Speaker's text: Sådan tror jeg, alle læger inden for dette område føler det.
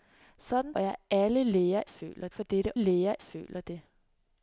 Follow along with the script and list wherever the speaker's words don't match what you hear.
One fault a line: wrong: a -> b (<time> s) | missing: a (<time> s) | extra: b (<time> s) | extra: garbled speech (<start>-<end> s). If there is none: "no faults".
missing: tror (0.8 s)
wrong: inden -> føler (1.8 s)
wrong: område -> læger (2.7 s)